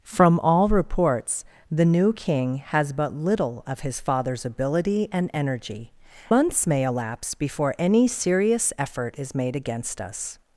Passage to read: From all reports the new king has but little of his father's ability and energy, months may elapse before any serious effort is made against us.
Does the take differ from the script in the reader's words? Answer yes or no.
no